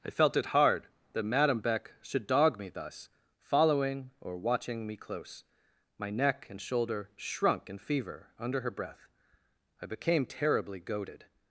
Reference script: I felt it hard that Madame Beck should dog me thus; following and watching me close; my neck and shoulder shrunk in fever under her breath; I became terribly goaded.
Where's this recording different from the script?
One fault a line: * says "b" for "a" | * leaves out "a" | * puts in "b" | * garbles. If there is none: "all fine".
* says "or" for "and"